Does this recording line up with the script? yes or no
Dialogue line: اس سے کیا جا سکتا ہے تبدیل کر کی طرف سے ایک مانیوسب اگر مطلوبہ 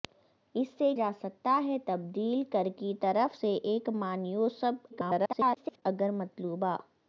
no